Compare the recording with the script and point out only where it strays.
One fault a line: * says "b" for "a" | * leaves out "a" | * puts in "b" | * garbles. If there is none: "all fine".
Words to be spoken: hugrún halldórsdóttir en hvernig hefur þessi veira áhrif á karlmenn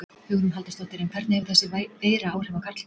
all fine